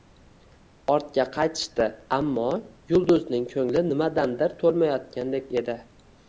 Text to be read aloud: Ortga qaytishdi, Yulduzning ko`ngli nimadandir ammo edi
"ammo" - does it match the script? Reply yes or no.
no